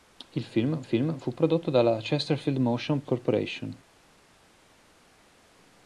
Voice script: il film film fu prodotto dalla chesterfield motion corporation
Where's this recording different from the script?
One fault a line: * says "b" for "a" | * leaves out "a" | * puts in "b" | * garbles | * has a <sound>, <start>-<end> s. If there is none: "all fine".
all fine